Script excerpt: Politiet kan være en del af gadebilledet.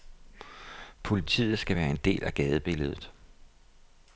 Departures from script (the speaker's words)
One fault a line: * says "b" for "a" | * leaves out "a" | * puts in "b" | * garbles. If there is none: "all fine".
* says "skal" for "kan"